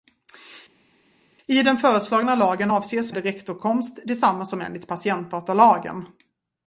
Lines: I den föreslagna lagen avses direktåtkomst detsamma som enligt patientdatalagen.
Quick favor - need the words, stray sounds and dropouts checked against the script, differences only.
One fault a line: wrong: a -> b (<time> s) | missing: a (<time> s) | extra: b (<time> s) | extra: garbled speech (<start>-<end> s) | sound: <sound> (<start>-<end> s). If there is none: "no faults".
no faults